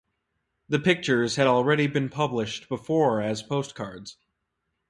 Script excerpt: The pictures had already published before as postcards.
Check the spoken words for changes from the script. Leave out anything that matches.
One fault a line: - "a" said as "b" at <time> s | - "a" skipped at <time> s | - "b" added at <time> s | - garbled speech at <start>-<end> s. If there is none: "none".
- "been" added at 1.9 s